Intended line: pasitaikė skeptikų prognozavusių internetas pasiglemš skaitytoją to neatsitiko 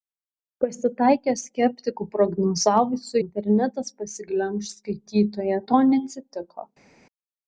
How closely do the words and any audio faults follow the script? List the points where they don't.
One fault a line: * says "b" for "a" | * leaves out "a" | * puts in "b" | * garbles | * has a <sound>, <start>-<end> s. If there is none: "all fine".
all fine